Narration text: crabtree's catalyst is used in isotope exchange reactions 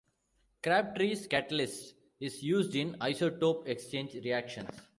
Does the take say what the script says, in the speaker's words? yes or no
yes